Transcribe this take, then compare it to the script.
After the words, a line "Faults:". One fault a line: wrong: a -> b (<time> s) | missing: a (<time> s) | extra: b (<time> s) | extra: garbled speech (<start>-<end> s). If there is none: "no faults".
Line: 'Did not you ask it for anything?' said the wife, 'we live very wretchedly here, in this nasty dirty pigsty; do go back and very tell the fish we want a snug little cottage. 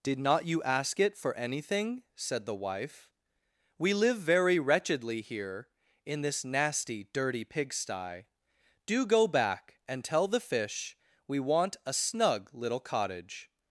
'Did not you ask it for anything?' said the wife, 'we live very wretchedly here, in this nasty dirty pigsty; do go back and tell the fish we want a snug little cottage.
Faults:
missing: very (10.0 s)